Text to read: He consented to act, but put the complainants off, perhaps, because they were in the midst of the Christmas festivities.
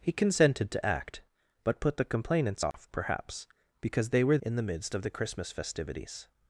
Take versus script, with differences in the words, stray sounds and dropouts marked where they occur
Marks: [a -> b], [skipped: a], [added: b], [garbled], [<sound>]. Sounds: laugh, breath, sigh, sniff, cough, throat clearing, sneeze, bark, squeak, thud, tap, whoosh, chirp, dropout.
He consented to act, but put the complainants off, [dropout] perhaps, because they were in the midst of the Christmas festivities.